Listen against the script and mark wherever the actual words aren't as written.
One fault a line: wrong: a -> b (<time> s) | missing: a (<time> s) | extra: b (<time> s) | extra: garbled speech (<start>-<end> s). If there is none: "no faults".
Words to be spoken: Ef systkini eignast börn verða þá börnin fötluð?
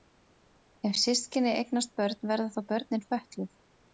no faults